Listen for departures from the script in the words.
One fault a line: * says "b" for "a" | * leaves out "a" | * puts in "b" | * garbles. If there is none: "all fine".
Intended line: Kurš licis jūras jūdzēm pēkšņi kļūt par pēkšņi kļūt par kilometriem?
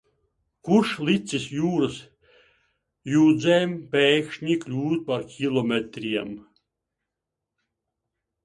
* leaves out "pēkšņi kļūt par"